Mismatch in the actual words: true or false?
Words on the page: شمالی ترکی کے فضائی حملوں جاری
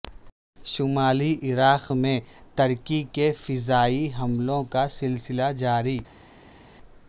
true